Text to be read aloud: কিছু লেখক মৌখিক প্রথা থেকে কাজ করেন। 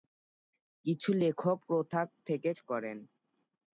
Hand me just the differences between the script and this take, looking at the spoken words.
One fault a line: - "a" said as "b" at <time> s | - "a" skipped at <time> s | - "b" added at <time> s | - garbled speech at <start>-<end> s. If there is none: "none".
- "মৌখিক" skipped at 1.6 s
- "কাজ" skipped at 2.5 s